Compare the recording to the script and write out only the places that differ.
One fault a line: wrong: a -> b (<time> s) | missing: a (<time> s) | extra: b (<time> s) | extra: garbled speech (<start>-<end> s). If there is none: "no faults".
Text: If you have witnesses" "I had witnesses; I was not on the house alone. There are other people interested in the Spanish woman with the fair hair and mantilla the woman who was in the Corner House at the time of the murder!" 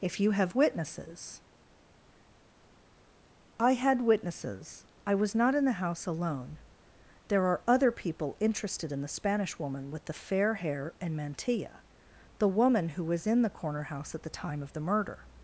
wrong: on -> in (5.5 s)